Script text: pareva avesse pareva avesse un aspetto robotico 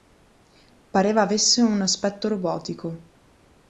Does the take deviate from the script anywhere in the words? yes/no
yes